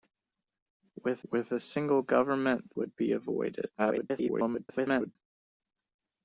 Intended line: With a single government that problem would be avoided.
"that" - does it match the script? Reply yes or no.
no